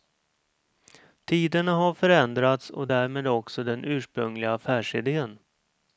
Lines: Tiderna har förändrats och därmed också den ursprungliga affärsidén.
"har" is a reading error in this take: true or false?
false